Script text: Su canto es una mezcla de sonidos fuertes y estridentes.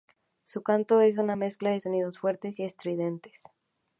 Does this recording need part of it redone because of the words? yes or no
no